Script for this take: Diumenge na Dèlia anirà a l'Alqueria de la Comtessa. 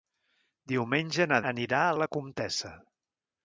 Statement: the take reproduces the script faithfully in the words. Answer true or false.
false